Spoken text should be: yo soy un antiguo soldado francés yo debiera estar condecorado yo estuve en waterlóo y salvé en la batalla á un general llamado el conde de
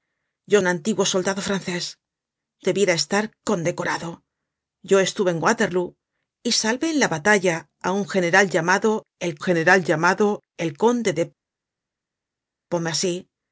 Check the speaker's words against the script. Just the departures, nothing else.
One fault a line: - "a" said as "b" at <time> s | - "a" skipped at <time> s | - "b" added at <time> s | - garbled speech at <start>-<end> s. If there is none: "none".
- "soy" skipped at 0.6 s
- "yo" skipped at 1.8 s
- "general llamado el" added at 9.5 s